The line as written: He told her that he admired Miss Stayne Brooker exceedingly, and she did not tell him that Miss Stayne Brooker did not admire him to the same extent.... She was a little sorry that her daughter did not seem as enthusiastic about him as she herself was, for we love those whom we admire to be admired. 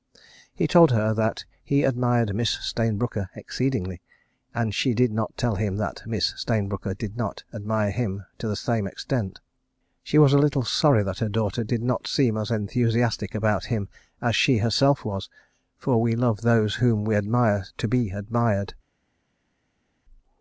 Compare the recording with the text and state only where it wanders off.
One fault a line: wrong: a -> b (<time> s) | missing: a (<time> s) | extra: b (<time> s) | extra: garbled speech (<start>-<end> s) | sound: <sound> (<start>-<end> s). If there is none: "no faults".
no faults